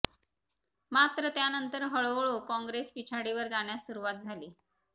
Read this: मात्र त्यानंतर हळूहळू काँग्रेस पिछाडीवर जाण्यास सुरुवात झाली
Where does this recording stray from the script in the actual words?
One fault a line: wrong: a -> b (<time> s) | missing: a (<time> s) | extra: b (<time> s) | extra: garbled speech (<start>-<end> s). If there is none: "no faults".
no faults